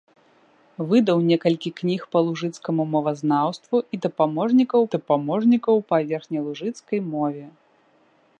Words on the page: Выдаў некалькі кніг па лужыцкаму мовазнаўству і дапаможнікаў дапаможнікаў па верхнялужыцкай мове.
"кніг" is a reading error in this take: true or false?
false